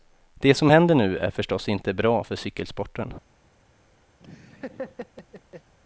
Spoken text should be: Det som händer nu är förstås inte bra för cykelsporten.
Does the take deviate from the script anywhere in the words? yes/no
no